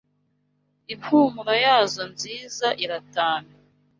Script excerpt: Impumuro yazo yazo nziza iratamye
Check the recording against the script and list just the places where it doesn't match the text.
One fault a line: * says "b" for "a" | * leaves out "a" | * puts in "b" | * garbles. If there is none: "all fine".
* leaves out "yazo"